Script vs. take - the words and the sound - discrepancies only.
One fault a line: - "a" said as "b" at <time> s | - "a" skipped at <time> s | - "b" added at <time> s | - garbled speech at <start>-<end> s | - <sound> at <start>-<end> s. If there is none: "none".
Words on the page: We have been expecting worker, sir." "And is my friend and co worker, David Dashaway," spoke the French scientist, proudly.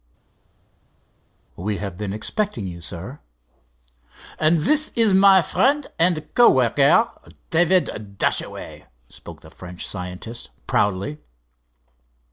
- "worker" said as "you" at 2.7 s
- "this" added at 4.6 s